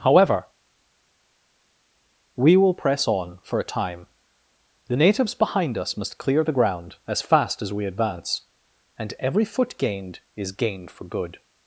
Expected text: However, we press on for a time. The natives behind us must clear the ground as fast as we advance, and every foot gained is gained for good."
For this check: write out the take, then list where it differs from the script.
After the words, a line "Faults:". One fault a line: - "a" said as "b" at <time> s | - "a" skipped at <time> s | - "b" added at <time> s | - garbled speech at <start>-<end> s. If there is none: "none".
However, we will press on for a time. The natives behind us must clear the ground as fast as we advance, and every foot gained is gained for good."
Faults:
- "will" added at 2.5 s